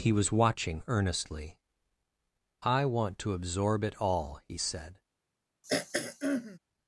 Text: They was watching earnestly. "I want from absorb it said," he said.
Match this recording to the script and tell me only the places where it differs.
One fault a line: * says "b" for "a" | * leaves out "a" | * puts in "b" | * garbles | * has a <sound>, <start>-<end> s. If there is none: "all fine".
* says "He" for "They"
* says "to" for "from"
* says "all" for "said"
* has a throat clearing, 5.6-6.6 s